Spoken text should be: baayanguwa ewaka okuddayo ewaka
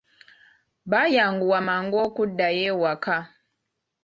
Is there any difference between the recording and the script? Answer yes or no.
yes